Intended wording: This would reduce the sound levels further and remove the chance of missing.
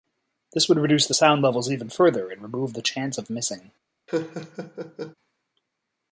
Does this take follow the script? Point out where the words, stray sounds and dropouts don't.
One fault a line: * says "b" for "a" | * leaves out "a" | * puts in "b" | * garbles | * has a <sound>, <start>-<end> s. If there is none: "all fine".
* puts in "even"
* has a laugh, 4.1-5.1 s